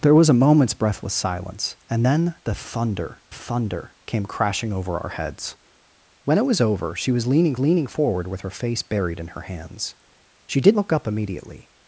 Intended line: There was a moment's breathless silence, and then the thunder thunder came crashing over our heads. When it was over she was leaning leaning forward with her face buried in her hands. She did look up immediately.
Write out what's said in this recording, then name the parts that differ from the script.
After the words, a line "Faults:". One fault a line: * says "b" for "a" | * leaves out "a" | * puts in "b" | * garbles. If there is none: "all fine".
There was a moment's breathless silence, and then the thunder thunder came crashing over our heads. When it was over she was leaning leaning forward with her face buried in her hands. She did look up immediately.
Faults:
all fine